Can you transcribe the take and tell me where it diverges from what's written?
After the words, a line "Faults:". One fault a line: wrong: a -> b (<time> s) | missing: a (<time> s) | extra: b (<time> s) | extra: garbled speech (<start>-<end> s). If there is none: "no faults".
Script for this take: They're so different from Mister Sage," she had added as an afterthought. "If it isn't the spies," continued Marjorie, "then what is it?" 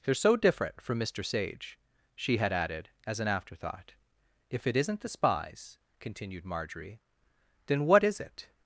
They're so different from Mister Sage," she had added as an afterthought. "If it isn't the spies," continued Marjorie, "then what is it?"
Faults:
no faults